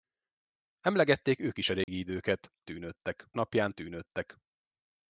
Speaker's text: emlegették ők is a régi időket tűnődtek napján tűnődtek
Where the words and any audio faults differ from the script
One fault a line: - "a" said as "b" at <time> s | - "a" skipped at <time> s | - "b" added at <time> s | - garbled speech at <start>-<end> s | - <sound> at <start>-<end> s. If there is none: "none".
- dropout at 1.8-1.9 s